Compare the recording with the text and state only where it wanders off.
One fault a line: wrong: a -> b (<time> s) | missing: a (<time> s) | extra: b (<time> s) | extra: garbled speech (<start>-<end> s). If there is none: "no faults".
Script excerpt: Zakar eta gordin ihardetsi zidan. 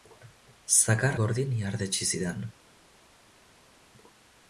missing: eta (1.2 s)